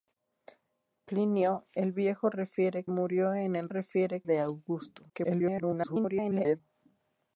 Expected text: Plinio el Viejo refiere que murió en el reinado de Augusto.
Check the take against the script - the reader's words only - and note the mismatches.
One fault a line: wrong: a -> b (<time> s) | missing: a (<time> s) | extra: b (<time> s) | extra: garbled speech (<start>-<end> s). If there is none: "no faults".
missing: que (2.9 s)
wrong: reinado -> refiere (3.7 s)
extra: garbled speech (5.1-6.6 s)